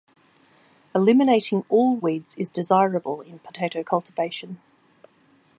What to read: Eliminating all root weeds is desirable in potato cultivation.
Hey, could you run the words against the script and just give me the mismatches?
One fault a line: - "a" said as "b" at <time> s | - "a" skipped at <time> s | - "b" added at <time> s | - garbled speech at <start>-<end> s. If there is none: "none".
- "root" skipped at 2.0 s